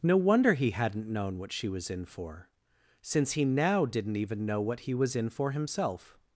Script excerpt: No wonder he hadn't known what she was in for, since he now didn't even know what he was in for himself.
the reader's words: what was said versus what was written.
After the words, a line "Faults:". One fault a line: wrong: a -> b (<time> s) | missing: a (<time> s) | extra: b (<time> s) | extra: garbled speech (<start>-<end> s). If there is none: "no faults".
No wonder he hadn't known what she was in for, since he now didn't even know what he was in for himself.
Faults:
no faults